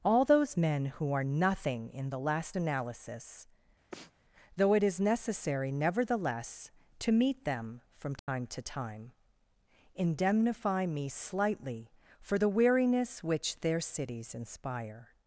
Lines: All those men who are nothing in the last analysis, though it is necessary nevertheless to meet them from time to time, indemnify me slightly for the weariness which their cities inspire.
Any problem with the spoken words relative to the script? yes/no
no